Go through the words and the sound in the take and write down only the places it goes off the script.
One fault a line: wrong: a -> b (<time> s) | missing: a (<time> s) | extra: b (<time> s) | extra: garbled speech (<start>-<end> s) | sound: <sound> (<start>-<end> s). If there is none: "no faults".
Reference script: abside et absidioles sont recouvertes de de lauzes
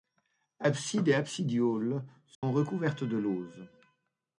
sound: dropout (2.3-2.4 s)
missing: de (3.2 s)